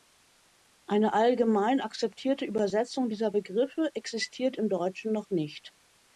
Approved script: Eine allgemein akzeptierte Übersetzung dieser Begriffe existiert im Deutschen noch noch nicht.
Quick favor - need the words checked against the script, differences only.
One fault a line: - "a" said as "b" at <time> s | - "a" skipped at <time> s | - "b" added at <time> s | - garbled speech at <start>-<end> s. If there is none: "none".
- "noch" skipped at 5.3 s